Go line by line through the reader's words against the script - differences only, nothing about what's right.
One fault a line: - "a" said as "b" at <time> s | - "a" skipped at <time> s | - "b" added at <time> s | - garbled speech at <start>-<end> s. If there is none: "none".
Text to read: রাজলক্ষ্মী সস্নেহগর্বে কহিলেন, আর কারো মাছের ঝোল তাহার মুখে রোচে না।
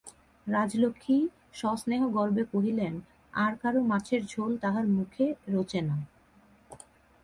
none